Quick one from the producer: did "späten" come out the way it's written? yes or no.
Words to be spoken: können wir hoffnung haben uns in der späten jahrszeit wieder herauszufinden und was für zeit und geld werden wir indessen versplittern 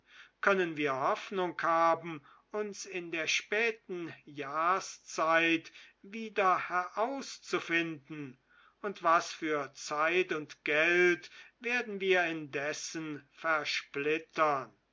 yes